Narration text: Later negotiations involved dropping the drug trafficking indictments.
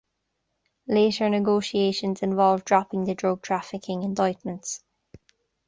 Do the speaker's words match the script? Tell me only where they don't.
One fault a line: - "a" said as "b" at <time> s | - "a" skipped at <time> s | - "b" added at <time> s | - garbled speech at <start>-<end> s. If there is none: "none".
none